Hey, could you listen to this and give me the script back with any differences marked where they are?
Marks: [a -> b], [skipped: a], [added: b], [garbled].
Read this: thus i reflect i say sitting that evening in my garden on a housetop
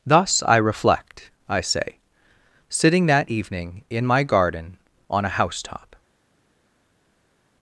thus i reflect i say sitting that evening in my garden on a housetop